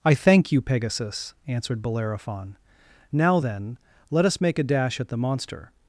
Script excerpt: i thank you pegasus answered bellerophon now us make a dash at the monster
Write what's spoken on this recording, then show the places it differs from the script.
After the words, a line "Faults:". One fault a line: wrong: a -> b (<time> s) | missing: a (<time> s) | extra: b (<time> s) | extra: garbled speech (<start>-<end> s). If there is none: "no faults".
i thank you pegasus answered bellerophon now then let us make a dash at the monster
Faults:
extra: then let (3.4 s)